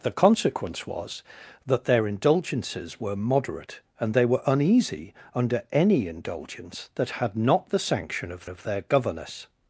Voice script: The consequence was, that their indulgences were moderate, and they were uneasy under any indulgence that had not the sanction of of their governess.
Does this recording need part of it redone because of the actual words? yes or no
no